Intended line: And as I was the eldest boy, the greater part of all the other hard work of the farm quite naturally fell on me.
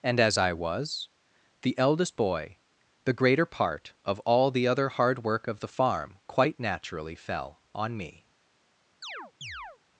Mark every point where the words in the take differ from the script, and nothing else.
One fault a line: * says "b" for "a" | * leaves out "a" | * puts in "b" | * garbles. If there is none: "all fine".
all fine